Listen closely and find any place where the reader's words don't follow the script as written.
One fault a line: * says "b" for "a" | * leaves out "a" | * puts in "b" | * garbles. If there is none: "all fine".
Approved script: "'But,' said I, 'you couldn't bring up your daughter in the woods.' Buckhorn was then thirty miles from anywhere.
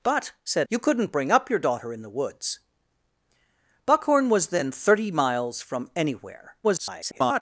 * leaves out "I"
* garbles